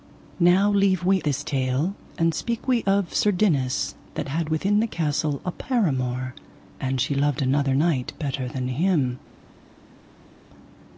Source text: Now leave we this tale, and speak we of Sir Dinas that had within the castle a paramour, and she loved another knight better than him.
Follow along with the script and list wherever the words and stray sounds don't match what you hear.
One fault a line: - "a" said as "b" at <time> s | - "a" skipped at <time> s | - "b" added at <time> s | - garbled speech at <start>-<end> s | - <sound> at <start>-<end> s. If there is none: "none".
none